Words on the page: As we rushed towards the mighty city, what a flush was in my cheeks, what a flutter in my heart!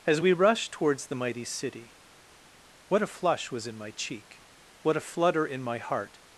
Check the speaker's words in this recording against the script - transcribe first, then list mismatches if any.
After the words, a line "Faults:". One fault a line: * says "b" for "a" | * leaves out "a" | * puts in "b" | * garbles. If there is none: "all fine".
As we rushed towards the mighty city, what a flush was in my cheek, what a flutter in my heart!
Faults:
* says "cheek" for "cheeks"